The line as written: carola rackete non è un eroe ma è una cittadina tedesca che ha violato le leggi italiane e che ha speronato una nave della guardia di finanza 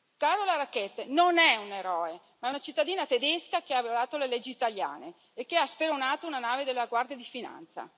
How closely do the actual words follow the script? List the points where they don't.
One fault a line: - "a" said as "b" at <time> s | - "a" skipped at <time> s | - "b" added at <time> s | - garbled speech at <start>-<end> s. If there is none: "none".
none